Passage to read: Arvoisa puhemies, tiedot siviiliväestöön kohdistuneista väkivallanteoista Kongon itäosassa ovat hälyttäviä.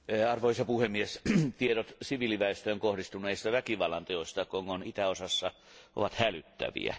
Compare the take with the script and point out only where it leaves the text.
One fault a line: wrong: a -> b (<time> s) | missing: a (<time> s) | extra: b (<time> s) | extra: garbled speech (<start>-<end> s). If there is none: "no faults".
no faults